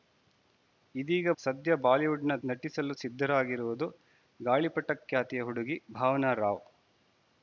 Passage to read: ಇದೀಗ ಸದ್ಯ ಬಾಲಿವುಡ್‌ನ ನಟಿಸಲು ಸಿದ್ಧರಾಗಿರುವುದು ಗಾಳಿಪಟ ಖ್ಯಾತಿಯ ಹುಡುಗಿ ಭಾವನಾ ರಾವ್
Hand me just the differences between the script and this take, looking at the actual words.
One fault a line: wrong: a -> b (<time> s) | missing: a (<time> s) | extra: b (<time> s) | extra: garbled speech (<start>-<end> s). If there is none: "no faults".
no faults